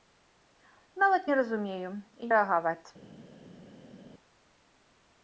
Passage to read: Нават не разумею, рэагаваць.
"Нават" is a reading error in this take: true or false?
false